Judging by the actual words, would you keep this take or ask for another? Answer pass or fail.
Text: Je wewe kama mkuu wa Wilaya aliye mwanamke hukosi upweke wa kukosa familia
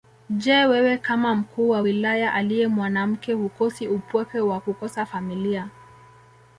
pass